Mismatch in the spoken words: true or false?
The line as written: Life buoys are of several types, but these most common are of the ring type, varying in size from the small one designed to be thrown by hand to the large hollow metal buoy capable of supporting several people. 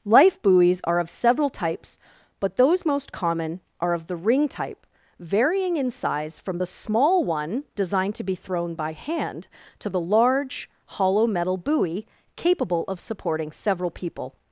true